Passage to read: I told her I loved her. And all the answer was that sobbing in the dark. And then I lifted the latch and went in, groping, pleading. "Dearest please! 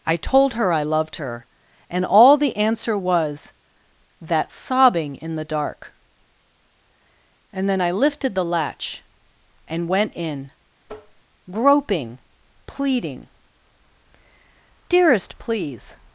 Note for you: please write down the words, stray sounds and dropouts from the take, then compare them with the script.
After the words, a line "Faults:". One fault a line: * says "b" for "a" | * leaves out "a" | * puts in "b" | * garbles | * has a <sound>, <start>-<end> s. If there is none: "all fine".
I told her I loved her. And all the answer was that sobbing in the dark. And then I lifted the latch and went in, groping, pleading. "Dearest please!
Faults:
* has a tap, 10.8-11.2 s